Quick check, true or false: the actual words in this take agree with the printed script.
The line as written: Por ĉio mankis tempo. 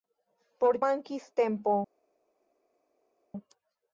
false